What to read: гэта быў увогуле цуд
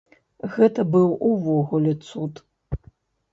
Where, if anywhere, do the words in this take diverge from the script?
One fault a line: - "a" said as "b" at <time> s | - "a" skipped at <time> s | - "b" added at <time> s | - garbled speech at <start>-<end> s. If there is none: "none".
none